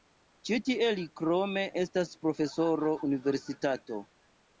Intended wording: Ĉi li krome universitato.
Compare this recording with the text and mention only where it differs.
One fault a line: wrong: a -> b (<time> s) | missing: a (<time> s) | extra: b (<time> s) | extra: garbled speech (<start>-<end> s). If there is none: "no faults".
extra: tie (0.7 s)
extra: estas profesoro (1.8 s)